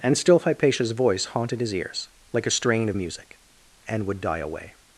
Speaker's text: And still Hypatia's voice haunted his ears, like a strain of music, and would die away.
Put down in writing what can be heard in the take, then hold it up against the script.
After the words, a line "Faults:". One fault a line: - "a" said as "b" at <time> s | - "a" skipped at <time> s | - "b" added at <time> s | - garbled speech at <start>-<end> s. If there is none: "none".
And still Hypatia's voice haunted his ears, like a strain of music, and would die away.
Faults:
none